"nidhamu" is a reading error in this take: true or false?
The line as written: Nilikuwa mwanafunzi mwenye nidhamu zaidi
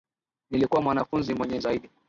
true